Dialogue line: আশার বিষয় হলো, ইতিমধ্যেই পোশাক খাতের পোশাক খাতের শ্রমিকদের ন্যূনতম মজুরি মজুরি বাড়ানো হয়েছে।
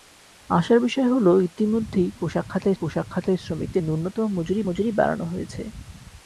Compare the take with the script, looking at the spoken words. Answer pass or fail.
pass